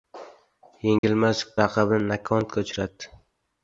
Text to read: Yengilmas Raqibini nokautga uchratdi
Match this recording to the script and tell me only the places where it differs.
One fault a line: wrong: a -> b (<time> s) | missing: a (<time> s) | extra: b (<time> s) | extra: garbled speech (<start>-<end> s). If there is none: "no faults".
no faults